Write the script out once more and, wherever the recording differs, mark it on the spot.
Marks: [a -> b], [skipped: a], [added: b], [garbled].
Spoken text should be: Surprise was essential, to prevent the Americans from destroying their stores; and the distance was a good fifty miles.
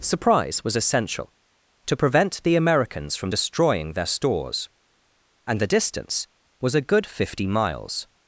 Surprise was essential, to prevent the Americans from destroying their stores; and the distance was a good fifty miles.